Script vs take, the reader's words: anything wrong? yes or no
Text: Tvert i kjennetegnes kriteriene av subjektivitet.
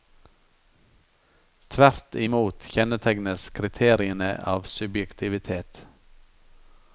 yes